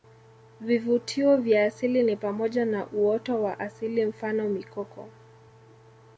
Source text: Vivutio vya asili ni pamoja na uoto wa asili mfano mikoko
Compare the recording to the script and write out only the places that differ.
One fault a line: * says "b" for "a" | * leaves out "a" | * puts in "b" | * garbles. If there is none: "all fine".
all fine